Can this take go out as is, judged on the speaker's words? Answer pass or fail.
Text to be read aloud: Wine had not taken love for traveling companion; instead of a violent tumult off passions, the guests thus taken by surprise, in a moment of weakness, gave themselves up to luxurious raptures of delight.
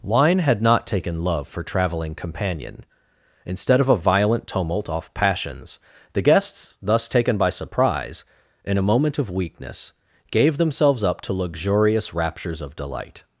pass